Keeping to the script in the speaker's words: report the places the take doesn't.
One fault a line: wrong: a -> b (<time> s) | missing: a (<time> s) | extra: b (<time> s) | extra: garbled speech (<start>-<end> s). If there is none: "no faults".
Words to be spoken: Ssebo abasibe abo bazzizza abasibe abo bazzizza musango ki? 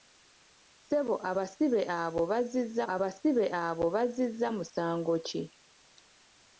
no faults